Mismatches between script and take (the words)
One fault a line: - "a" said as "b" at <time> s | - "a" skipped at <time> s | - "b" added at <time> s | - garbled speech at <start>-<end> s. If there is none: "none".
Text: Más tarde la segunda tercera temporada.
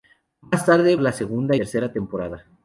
none